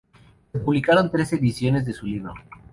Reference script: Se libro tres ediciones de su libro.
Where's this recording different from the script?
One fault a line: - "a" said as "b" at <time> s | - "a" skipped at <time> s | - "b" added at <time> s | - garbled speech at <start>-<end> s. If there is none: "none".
- "libro" said as "publicaron" at 0.6 s